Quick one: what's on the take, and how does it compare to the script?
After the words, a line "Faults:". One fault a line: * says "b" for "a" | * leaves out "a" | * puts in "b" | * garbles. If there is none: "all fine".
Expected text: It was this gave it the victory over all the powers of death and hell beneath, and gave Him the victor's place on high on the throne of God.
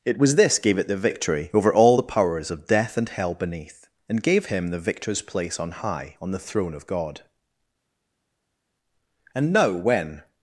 It was this gave it the victory over all the powers of death and hell beneath, and gave Him the victor's place on high on the throne of God. And now, when
Faults:
* puts in "And now when"